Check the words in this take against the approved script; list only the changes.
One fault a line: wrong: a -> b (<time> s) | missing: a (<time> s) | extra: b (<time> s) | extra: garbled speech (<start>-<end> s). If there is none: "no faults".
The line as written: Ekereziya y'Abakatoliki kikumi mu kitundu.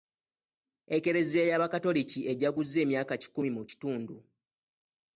extra: ejaguza emyaka (2.3 s)